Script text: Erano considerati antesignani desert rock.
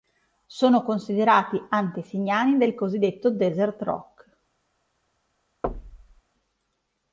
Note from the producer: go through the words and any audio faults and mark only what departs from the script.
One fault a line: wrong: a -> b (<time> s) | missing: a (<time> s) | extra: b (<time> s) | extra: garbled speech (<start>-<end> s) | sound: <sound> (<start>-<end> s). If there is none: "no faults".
wrong: Erano -> Sono (0.5 s)
extra: del cosiddetto (2.6 s)
sound: thud (5.6-6.2 s)